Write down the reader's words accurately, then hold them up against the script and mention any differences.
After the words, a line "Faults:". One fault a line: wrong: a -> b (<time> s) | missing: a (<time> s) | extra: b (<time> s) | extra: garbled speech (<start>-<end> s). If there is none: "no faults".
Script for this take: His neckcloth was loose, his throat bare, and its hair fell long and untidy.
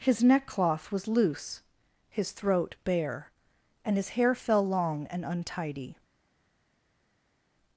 His neckcloth was loose, his throat bare, and his hair fell long and untidy.
Faults:
wrong: its -> his (4.0 s)